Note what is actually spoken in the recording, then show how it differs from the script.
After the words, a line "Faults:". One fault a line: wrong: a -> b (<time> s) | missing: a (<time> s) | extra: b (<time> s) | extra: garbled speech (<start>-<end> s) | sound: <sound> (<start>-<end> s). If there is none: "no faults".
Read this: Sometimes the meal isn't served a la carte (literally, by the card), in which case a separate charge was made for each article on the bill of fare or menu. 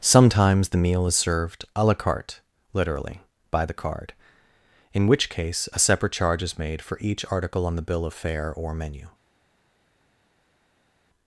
Sometimes the meal is served a la carte (literally, by the card), in which case a separate charge is made for each article on the bill of fare or menu.
Faults:
wrong: isn't -> is (1.0 s)
wrong: was -> is (6.4 s)